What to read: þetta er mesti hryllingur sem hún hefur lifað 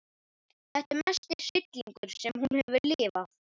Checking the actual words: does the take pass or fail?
pass